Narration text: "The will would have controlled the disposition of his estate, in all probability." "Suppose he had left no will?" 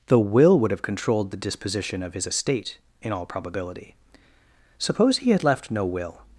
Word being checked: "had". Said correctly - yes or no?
yes